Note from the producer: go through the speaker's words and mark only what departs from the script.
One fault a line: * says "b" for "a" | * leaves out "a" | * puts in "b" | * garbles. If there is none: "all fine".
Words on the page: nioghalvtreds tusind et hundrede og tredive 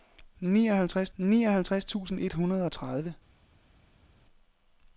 * puts in "nioghalvtreds"